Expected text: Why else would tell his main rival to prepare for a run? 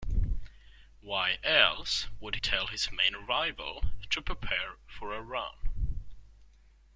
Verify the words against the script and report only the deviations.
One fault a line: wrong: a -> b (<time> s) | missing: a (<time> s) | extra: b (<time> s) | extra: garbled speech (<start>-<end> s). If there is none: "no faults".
no faults